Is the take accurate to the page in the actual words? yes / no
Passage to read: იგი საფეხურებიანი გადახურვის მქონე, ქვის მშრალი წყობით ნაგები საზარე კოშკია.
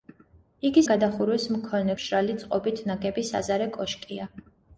no